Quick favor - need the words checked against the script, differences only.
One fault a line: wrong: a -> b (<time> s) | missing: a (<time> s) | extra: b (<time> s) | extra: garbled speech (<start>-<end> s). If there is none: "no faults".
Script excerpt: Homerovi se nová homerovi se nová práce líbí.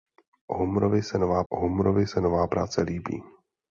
no faults